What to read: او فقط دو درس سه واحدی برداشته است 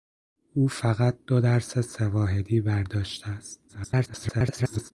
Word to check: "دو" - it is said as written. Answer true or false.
true